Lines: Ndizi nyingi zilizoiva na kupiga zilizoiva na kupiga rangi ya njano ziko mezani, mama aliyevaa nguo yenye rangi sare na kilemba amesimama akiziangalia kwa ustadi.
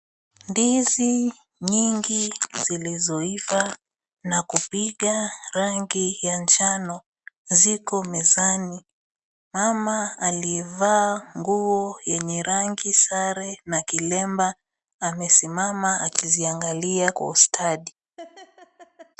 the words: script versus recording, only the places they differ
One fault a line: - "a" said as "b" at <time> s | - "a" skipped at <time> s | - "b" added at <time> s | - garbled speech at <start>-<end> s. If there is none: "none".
- "zilizoiva na kupiga" skipped at 5.3 s